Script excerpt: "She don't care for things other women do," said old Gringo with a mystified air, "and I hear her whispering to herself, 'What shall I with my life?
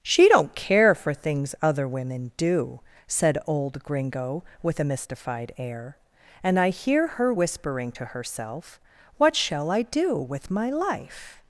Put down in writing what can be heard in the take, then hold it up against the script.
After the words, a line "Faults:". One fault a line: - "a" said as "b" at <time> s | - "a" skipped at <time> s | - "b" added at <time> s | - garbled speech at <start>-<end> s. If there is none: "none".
"She don't care for things other women do," said old Gringo with a mystified air, "and I hear her whispering to herself, 'What shall I do with my life?
Faults:
- "do" added at 9.8 s